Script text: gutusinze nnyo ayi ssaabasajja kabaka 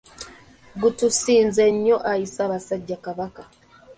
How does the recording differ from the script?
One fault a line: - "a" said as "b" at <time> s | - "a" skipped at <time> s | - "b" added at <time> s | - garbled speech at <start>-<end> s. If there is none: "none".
none